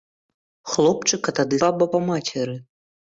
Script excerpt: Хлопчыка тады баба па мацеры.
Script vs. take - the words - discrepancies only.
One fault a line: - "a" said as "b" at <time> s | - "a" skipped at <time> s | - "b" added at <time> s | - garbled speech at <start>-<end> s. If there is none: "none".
none